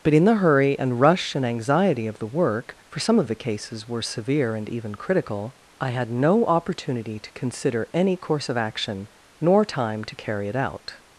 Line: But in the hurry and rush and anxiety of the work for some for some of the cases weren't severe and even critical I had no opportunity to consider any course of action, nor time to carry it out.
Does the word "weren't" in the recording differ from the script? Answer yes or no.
yes